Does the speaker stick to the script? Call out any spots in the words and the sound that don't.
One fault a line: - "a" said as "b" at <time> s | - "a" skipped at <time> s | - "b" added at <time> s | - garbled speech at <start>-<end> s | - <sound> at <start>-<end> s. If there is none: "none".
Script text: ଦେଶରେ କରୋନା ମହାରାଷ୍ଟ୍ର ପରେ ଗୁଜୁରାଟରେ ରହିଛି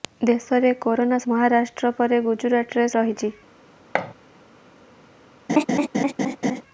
- thud at 3.9-4.1 s
- laugh at 5.5-6.6 s